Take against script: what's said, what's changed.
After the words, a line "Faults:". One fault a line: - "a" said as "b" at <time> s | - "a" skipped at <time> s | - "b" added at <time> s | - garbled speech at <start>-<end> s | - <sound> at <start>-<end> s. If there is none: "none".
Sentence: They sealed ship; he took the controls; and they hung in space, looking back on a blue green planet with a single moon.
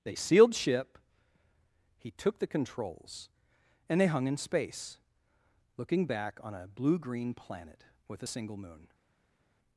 They sealed ship; he took the controls; and they hung in space, looking back on a blue green planet with a single moon.
Faults:
none